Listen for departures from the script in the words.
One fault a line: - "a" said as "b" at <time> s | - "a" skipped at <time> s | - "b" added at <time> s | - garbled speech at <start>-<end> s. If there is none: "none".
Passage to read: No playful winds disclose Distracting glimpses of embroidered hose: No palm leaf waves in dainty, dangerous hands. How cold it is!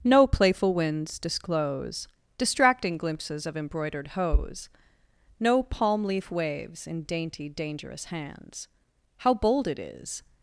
- "cold" said as "bold" at 9.3 s